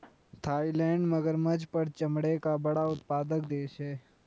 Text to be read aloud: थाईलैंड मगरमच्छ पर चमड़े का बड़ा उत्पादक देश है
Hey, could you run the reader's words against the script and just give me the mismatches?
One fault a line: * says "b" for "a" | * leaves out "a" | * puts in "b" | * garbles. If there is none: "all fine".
all fine